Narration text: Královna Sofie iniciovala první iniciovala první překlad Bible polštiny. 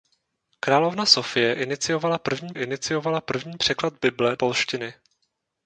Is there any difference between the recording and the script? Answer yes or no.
no